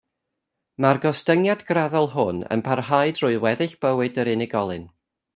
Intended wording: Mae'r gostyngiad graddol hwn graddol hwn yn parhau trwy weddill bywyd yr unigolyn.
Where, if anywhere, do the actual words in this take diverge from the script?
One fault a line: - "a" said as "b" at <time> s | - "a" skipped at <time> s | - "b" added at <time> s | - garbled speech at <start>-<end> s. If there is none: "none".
- "graddol hwn" skipped at 2.4 s